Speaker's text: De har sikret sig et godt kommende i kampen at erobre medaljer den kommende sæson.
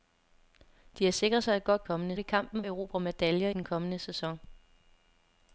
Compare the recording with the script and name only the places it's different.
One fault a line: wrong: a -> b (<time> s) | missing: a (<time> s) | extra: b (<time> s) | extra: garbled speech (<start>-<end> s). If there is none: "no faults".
no faults